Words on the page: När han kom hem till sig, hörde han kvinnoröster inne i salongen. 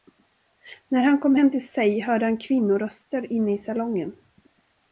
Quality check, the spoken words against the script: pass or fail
pass